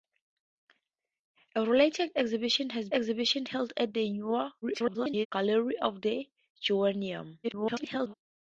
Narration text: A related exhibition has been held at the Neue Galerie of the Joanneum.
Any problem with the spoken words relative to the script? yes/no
yes